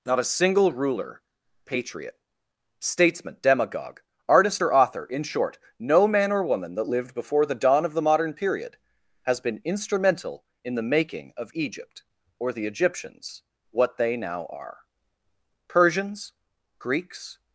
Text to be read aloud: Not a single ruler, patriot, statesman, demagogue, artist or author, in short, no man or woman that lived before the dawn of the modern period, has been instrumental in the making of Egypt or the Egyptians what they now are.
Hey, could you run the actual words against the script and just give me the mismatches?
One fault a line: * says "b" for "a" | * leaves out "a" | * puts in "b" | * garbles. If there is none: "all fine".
* puts in "Persians Greeks"